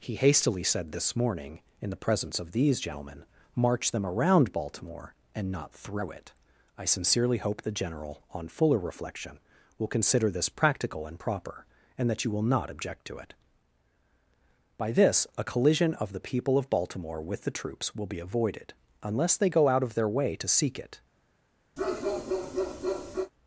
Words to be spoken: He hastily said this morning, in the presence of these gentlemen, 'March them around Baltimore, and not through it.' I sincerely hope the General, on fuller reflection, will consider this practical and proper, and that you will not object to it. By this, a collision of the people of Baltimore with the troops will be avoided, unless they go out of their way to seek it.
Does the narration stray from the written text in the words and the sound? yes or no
yes